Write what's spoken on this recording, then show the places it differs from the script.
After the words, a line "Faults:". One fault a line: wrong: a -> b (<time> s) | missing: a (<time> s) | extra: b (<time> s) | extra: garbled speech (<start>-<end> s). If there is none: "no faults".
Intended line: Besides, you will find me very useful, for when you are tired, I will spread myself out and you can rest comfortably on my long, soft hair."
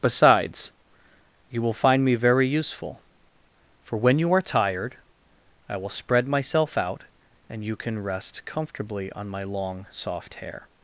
Besides, you will find me very useful, for when you are tired, I will spread myself out and you can rest comfortably on my long, soft hair."
Faults:
no faults